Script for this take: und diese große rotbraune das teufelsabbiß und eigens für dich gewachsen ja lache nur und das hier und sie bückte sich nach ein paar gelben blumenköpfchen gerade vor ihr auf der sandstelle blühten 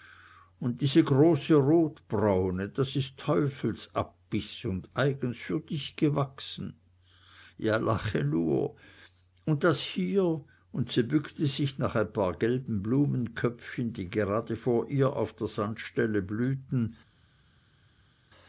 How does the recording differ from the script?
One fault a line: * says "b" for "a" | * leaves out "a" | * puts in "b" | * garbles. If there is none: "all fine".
* puts in "ist"
* puts in "die"